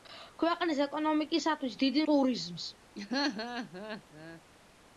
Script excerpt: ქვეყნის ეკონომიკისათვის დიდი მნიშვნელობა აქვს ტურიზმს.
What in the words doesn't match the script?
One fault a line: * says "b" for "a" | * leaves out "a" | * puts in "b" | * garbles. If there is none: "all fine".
* leaves out "მნიშვნელობა აქვს"